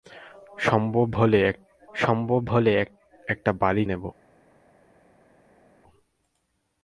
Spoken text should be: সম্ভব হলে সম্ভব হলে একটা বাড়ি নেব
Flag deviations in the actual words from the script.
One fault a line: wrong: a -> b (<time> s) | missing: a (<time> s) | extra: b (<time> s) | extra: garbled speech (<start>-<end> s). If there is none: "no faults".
no faults